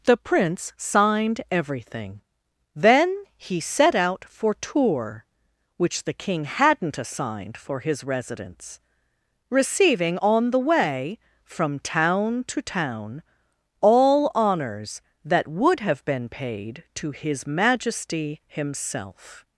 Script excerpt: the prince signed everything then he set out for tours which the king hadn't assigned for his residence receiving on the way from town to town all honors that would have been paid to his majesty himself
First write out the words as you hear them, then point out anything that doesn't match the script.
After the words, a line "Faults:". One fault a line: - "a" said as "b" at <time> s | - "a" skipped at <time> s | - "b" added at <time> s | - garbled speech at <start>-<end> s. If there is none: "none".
the prince signed everything then he set out for tours which the king hadn't assigned for his residence receiving on the way from town to town all honors that would have been paid to his majesty himself
Faults:
none